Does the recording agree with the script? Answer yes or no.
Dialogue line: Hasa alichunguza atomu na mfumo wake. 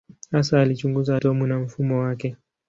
yes